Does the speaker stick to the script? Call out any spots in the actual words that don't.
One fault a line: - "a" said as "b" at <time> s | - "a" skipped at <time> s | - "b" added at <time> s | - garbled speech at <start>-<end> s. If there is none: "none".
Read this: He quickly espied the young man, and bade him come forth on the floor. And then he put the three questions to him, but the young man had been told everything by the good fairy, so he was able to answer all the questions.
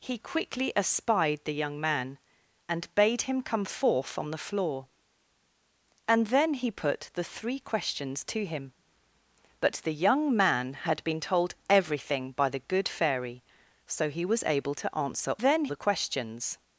- "all" said as "then" at 15.4 s